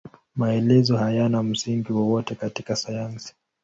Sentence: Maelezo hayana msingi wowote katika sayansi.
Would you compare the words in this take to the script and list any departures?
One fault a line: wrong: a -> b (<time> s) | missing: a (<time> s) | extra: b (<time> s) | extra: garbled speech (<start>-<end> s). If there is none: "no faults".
no faults